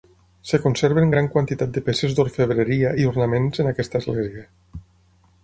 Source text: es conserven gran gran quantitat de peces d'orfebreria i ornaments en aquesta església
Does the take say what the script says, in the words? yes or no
no